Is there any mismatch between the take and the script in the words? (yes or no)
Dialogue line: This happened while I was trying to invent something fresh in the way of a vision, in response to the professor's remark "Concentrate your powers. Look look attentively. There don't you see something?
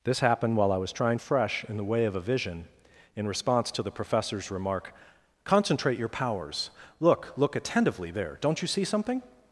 yes